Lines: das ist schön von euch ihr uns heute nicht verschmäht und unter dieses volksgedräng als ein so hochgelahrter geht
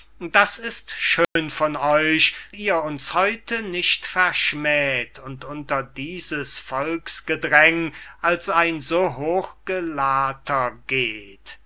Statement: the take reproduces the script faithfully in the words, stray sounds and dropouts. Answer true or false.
false